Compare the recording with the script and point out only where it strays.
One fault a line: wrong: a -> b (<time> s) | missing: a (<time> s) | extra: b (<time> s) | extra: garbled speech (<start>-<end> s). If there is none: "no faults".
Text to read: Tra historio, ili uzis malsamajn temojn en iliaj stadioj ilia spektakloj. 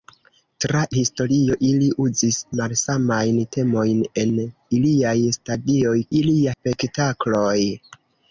no faults